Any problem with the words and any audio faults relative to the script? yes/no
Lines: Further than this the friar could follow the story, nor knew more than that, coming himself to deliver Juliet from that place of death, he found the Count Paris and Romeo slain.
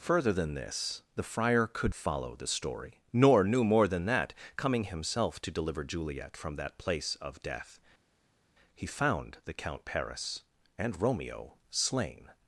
no